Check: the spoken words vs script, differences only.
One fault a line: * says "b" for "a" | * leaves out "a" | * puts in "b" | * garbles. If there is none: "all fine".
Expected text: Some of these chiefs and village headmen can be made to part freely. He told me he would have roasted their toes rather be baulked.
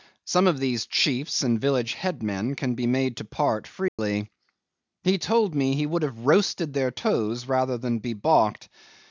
* puts in "than"